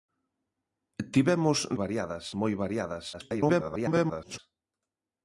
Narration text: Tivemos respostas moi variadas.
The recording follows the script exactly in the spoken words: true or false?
false